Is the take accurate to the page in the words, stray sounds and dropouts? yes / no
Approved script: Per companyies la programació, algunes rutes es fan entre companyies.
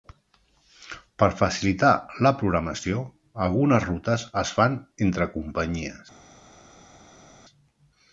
no